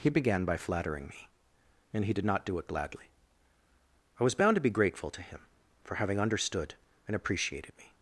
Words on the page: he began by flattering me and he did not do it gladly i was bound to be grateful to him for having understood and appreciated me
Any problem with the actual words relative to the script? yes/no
no